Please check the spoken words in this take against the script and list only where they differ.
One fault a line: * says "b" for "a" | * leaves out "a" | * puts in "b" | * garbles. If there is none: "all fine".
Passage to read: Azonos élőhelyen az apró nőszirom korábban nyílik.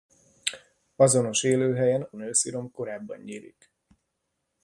* leaves out "az apró"